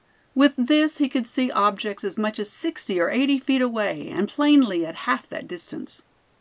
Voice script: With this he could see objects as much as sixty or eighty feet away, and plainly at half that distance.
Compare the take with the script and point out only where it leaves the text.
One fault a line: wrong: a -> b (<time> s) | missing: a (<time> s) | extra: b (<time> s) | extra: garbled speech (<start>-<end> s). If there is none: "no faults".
no faults